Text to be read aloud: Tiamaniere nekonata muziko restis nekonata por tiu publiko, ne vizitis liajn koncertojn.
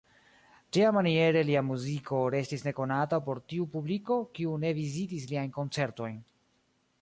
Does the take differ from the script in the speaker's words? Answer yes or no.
yes